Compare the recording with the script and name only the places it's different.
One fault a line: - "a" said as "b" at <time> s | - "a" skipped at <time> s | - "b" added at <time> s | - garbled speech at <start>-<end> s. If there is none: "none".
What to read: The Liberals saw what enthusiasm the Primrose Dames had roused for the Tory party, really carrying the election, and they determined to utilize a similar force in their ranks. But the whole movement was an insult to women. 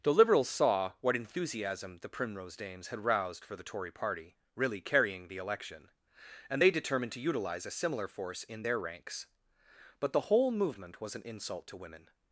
none